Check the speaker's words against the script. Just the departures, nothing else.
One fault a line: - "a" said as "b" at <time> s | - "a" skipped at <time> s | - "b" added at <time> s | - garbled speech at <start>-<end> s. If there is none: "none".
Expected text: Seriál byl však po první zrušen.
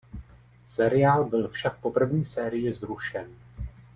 - "sérii" added at 2.3 s